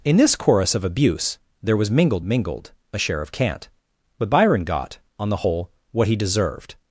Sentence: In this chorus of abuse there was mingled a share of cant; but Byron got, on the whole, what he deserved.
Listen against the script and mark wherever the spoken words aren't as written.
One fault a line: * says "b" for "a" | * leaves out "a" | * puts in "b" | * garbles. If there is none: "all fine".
* puts in "mingled"